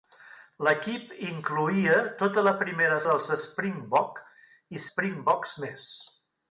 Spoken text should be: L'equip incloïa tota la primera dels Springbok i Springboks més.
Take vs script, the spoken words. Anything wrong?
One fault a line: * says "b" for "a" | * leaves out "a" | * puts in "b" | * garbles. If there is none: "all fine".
all fine